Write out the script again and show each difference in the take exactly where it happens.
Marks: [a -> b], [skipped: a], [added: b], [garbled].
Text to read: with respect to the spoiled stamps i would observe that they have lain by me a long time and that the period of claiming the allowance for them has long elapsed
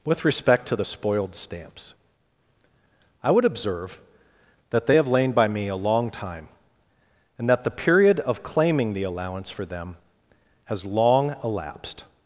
with respect to the spoiled stamps i would observe that they have lain by me a long time and that the period of claiming the allowance for them has long elapsed